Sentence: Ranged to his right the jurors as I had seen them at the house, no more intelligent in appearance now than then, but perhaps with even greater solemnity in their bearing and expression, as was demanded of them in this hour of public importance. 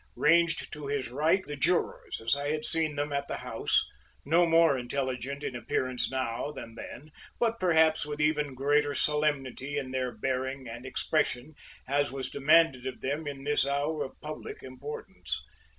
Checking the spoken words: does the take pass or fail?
pass